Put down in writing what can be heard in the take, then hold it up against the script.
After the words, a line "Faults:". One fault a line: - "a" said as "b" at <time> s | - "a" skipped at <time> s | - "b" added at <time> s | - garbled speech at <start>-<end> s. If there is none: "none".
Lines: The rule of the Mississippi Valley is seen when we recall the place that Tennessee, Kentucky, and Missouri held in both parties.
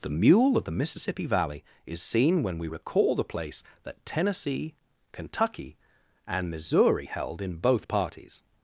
The mule of the Mississippi Valley is seen when we recall the place that Tennessee, Kentucky, and Missouri held in both parties.
Faults:
- "rule" said as "mule" at 0.1 s